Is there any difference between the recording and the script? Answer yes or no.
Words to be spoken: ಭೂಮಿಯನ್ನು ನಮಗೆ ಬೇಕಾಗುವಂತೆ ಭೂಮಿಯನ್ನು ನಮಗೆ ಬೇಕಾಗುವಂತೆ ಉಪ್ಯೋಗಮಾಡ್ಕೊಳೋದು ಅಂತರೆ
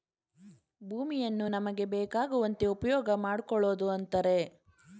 yes